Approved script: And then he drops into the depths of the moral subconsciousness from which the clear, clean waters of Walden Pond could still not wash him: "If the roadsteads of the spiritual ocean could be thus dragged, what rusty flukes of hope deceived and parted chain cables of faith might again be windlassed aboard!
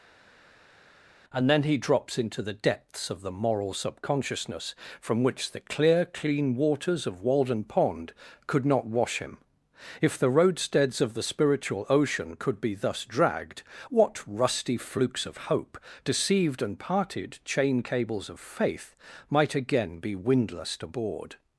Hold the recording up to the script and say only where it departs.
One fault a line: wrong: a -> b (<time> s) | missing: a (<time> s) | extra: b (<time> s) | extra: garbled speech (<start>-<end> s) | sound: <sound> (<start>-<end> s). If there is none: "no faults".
missing: still (8.6 s)